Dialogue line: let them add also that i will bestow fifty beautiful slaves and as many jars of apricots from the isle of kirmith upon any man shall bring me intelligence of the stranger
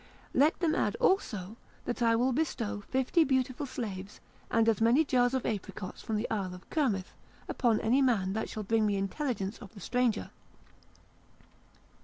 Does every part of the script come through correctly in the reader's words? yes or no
no